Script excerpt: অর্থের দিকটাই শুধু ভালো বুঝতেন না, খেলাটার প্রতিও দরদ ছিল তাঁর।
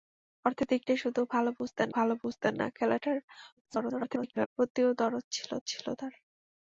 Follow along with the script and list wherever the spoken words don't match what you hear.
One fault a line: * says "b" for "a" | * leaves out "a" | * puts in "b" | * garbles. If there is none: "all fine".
* puts in "ভালো বুঝতেন"
* garbles
* puts in "ছিল"